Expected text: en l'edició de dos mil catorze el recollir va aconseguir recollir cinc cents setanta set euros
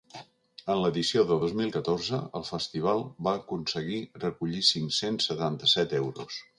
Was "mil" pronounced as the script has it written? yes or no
yes